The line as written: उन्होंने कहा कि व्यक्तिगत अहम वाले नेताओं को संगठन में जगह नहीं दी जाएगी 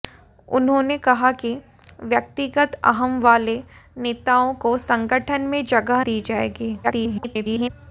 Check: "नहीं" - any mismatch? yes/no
yes